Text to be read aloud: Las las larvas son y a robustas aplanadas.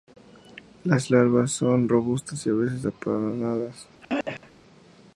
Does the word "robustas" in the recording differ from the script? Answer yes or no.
yes